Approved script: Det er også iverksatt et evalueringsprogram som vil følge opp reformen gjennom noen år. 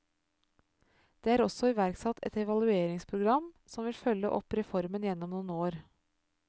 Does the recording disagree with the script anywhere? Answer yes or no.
no